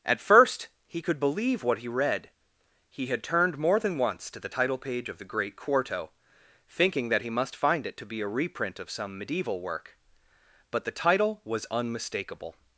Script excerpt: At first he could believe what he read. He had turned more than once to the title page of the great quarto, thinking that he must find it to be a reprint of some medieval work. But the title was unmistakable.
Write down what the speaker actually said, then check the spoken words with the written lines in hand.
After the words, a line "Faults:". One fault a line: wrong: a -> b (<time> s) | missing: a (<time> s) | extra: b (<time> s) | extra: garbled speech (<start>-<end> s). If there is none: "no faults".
At first he could believe what he read. He had turned more than once to the title page of the great quarto, thinking that he must find it to be a reprint of some medieval work. But the title was unmistakable.
Faults:
no faults